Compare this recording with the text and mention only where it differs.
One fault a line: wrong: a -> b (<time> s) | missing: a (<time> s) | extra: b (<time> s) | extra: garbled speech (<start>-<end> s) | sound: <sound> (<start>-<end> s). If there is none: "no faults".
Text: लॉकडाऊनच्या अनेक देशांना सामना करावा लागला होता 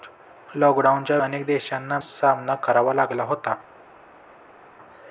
no faults